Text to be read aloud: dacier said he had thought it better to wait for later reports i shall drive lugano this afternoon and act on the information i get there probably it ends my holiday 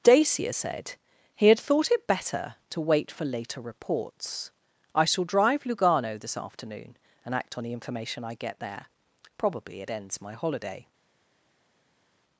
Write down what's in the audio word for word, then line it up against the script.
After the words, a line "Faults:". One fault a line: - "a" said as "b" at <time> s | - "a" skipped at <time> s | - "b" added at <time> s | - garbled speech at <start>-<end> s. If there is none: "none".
dacier said he had thought it better to wait for later reports i shall drive lugano this afternoon and act on the information i get there probably it ends my holiday
Faults:
none